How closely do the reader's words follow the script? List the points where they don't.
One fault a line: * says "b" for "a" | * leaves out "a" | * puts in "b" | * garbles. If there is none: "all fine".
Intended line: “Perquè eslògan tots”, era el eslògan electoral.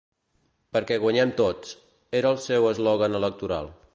* says "guanyem" for "eslògan"
* puts in "seu"